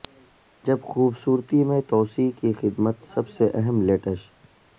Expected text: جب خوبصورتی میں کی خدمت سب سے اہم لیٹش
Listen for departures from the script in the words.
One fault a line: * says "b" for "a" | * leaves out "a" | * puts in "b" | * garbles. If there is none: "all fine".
* puts in "توسیع"